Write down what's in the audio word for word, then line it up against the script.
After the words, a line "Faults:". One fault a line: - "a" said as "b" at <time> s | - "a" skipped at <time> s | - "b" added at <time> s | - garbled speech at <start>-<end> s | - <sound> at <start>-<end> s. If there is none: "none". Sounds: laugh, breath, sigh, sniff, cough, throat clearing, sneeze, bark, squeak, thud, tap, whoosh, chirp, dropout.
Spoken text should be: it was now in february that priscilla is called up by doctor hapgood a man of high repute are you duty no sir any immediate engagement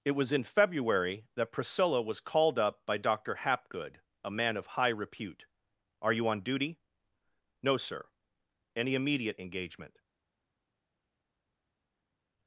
it was in february that priscilla was called up by doctor hapgood a man of high repute are you on duty no sir any immediate engagement
Faults:
- "now" skipped at 0.3 s
- "is" said as "was" at 2.0 s
- "on" added at 6.3 s